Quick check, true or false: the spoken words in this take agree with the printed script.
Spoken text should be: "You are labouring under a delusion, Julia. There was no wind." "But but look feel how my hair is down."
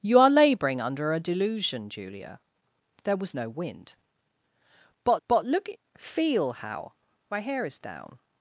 true